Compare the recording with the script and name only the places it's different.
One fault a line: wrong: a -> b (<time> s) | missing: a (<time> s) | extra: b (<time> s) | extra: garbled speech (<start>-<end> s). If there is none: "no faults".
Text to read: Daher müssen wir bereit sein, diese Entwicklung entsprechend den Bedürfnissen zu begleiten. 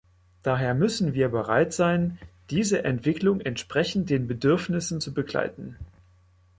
no faults